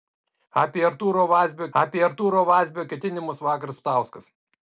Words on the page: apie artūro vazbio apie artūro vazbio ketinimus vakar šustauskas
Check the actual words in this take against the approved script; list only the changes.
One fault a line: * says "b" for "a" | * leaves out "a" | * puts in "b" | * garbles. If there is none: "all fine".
all fine